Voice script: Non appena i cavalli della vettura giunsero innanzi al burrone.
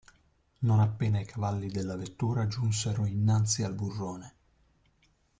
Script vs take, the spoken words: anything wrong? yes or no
no